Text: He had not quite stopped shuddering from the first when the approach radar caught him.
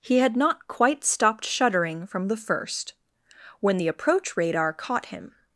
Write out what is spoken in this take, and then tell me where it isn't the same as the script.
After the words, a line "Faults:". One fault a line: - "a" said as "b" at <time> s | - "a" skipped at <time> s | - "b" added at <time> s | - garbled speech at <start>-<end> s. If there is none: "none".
He had not quite stopped shuddering from the first when the approach radar caught him.
Faults:
none